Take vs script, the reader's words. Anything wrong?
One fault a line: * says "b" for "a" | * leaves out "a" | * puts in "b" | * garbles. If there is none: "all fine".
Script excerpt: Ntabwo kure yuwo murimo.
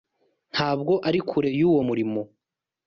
* puts in "ari"